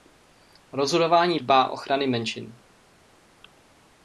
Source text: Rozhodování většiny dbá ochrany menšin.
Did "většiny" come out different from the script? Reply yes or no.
yes